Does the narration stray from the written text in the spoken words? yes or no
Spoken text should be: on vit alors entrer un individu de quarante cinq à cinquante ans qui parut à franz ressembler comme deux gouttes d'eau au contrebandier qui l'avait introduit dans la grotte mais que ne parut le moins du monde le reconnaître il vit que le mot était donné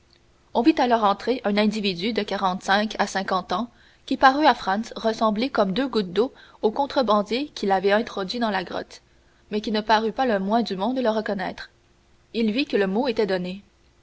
yes